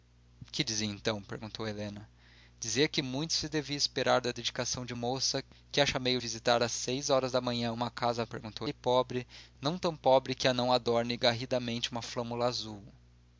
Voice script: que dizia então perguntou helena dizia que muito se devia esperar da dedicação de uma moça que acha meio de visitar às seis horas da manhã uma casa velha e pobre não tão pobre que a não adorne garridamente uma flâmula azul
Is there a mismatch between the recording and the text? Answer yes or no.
yes